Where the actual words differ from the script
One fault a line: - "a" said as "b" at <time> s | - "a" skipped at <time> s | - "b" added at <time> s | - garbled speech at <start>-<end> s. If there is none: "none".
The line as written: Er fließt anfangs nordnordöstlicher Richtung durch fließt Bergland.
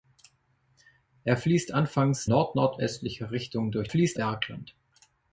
none